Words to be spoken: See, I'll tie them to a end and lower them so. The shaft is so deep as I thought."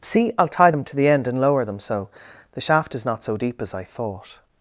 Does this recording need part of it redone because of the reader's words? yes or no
yes